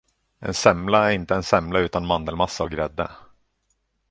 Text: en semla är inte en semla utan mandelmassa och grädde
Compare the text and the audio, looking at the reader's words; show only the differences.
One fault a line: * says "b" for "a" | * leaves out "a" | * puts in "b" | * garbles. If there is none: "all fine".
all fine